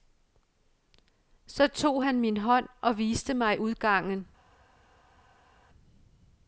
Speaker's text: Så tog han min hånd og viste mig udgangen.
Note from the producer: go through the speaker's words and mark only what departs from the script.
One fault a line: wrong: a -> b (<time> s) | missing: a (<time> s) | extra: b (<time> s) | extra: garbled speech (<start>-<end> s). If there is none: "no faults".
no faults